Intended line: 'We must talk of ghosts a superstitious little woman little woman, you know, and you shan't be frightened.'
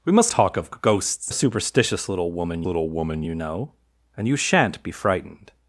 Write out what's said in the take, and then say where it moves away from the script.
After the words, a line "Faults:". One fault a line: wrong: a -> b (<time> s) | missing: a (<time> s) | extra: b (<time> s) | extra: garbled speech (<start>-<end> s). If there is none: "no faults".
'We must talk of ghosts a superstitious little woman little woman, you know, and you shan't be frightened.'
Faults:
no faults